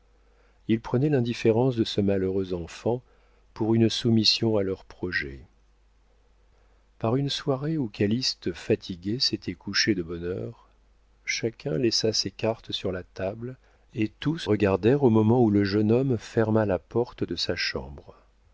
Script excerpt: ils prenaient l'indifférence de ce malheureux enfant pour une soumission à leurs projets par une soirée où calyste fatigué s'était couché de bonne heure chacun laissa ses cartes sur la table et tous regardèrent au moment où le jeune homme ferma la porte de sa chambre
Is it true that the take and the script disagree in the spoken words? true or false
false